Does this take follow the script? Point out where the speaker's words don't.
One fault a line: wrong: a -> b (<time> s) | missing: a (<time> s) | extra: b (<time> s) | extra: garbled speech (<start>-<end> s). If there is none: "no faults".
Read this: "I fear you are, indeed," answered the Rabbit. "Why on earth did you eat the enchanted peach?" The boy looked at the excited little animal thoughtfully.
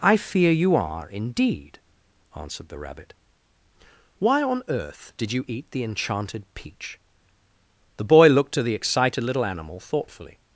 wrong: at -> to (8.5 s)